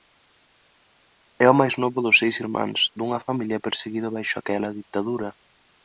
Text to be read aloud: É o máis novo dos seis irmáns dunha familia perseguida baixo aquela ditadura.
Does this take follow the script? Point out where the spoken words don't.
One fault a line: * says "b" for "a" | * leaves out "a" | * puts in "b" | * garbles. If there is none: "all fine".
all fine